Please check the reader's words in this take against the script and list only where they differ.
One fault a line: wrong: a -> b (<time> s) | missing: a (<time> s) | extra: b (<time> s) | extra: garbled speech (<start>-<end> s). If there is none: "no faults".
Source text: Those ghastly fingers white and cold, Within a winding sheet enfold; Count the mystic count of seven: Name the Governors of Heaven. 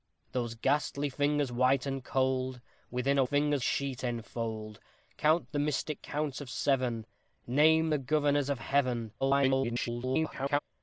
wrong: winding -> fingers (3.2 s)
extra: garbled speech (9.2-10.6 s)